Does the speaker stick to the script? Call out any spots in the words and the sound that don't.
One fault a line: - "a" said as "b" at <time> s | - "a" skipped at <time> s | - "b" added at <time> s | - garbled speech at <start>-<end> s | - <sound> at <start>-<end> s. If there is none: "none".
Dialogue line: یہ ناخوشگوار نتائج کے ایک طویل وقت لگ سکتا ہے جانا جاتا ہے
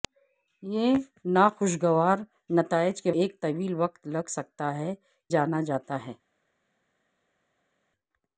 none